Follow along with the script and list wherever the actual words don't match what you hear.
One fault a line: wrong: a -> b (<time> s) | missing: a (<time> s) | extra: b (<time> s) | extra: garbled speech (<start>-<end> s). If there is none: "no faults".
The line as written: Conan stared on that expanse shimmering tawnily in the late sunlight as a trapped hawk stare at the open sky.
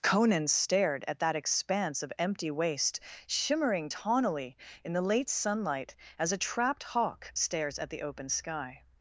wrong: on -> at (1.1 s)
extra: of empty waste (2.0 s)
wrong: stare -> stares (7.3 s)